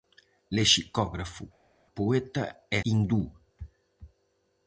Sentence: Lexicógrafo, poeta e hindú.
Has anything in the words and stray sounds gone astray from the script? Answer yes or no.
no